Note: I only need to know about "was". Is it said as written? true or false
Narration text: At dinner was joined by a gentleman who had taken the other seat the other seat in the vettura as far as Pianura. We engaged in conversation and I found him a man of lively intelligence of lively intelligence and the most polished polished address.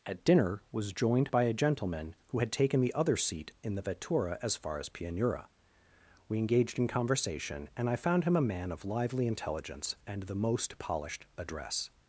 true